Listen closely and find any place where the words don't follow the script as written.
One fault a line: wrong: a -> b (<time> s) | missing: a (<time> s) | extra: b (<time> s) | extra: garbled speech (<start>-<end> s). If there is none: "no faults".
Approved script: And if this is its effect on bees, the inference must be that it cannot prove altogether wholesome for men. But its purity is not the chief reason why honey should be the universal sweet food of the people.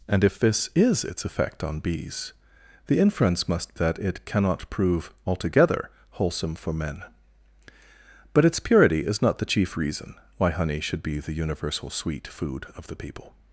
missing: be (3.8 s)